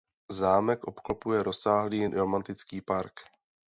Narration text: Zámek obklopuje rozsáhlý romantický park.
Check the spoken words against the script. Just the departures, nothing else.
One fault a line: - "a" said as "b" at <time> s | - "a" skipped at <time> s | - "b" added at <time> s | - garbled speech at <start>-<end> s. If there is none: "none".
none